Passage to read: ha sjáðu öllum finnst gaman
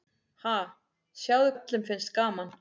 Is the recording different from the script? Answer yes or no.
no